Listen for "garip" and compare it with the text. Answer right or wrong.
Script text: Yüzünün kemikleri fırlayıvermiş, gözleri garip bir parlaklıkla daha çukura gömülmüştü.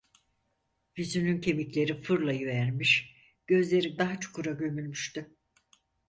wrong